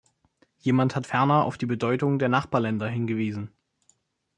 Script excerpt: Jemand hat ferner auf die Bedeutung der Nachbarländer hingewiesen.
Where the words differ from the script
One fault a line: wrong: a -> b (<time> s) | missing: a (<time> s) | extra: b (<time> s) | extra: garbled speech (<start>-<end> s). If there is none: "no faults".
no faults